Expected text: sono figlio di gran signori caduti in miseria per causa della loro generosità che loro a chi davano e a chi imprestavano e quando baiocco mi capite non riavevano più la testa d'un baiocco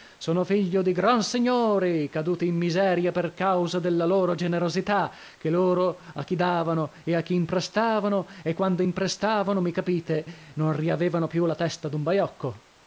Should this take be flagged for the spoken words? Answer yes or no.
yes